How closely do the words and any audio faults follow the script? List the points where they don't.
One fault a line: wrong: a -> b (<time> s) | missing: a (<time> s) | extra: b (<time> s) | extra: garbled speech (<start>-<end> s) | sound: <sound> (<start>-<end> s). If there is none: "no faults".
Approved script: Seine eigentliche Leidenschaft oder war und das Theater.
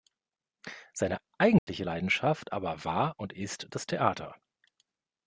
sound: dropout (1.6-1.7 s)
wrong: oder -> aber (2.5 s)
extra: ist (3.3 s)